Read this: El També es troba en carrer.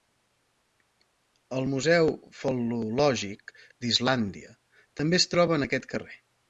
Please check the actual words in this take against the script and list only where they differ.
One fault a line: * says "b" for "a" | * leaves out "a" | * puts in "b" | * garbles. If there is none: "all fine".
* puts in "Museu fal·lològic d'Islàndia"
* puts in "aquest"